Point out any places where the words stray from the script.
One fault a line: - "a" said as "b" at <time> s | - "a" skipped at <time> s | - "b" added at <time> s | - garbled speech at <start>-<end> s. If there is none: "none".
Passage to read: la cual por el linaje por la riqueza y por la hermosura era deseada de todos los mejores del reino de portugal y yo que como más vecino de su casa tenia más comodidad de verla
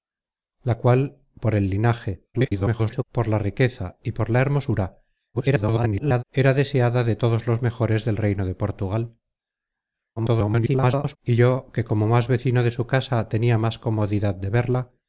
- garbled speech at 2.3-3.0 s
- garbled speech at 5.3-6.2 s
- garbled speech at 10.2-11.2 s